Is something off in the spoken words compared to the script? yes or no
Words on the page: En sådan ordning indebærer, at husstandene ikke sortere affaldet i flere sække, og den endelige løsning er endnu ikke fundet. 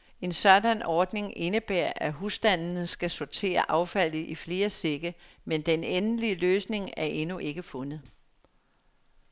yes